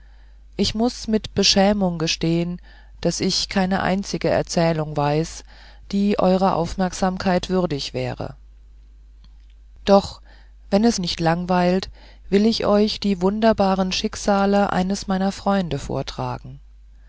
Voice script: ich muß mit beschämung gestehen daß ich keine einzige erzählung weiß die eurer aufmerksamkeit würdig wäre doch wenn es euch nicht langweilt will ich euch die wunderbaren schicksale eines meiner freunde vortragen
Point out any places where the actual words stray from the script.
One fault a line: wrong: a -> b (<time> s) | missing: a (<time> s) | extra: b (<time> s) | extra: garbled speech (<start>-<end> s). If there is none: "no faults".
missing: euch (11.0 s)